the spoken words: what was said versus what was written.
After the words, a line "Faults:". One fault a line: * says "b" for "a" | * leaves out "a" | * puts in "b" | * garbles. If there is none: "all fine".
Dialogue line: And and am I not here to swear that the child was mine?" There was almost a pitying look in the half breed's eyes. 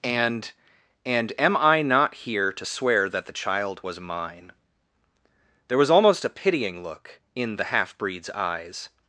And and am I not here to swear that the child was mine?" There was almost a pitying look in the half breed's eyes.
Faults:
all fine